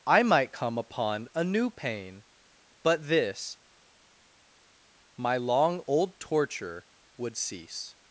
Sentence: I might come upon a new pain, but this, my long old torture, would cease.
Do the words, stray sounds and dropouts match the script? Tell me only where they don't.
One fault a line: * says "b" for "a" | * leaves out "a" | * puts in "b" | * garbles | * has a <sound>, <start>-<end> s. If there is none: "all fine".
all fine